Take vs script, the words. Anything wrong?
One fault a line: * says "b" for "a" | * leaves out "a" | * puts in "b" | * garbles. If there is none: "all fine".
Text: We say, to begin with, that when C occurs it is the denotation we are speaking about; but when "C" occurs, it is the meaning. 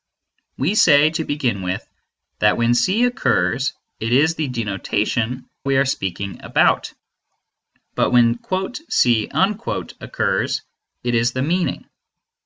all fine